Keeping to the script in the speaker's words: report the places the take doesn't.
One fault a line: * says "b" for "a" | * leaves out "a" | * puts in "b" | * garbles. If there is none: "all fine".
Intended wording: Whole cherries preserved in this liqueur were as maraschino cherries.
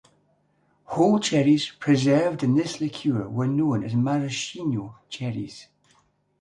* puts in "known"